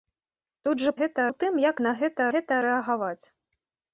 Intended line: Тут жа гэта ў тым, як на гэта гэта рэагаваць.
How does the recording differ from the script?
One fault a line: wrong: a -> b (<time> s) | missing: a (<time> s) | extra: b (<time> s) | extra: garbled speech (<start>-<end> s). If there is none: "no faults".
no faults